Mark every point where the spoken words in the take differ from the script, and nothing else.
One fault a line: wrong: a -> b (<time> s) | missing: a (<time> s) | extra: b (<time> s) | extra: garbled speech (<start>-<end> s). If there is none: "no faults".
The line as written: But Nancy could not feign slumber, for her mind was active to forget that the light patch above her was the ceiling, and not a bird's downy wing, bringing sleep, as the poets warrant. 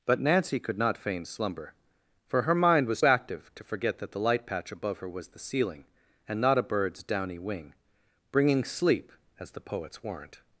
no faults